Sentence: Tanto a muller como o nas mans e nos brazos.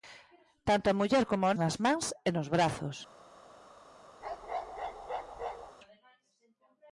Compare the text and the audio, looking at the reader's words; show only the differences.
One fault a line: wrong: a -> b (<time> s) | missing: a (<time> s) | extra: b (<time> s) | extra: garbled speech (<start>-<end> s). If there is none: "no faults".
no faults